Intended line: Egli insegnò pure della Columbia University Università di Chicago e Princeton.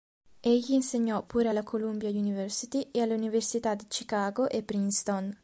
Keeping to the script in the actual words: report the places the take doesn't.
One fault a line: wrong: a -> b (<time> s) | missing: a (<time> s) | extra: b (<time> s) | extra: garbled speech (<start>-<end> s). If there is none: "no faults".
wrong: della -> alla (1.5 s)
extra: e alle (2.9 s)